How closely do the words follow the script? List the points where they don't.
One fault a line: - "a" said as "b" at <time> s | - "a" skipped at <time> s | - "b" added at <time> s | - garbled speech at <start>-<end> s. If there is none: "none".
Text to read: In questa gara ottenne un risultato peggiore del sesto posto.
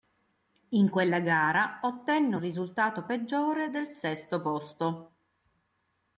- "questa" said as "quella" at 0.9 s